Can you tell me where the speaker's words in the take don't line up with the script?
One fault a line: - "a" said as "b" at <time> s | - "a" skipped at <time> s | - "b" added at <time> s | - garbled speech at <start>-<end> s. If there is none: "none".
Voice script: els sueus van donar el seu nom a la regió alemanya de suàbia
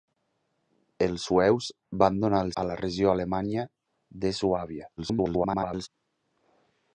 - "seu nom" skipped at 2.5 s
- garbled speech at 5.0-5.9 s